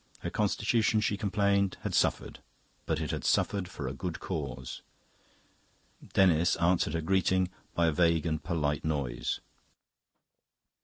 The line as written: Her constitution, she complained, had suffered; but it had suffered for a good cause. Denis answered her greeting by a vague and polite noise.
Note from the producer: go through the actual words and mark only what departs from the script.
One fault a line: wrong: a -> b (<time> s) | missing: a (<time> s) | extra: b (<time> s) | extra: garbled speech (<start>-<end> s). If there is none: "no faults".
no faults